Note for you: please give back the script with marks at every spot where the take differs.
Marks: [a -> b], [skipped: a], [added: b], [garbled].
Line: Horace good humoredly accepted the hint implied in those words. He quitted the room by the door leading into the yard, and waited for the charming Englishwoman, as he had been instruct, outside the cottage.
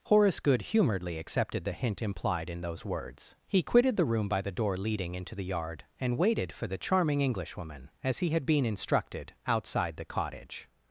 Horace good humoredly accepted the hint implied in those words. He quitted the room by the door leading into the yard, and waited for the charming Englishwoman, as he had been [instruct, -> instructed] outside the cottage.